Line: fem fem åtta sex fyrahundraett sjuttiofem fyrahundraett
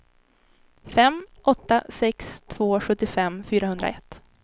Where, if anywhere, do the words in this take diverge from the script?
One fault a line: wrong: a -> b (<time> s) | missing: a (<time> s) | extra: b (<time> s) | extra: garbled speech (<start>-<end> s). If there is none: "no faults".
missing: fem (1.2 s)
wrong: fyrahundraett -> två (2.5 s)